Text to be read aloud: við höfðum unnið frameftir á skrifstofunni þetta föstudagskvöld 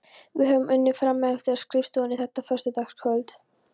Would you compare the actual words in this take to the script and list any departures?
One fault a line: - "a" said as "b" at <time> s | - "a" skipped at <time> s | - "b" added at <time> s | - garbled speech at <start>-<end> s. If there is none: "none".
none